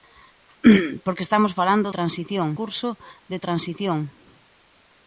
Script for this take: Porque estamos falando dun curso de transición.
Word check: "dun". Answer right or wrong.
wrong